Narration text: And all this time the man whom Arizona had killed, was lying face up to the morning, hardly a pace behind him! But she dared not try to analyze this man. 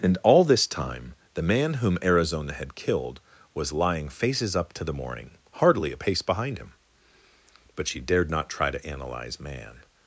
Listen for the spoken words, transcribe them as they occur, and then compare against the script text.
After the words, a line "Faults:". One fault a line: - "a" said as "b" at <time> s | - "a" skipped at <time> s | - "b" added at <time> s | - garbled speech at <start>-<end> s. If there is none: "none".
And all this time the man whom Arizona had killed, was lying faces up to the morning, hardly a pace behind him! But she dared not try to analyze man.
Faults:
- "face" said as "faces" at 4.1 s
- "this" skipped at 9.4 s